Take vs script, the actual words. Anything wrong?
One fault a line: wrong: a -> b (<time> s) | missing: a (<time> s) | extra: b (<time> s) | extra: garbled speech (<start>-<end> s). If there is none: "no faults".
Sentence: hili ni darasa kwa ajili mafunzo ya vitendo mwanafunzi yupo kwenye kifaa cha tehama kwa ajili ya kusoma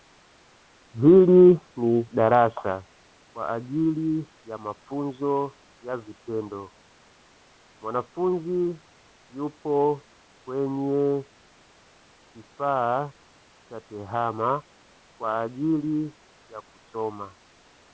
extra: ya (4.5 s)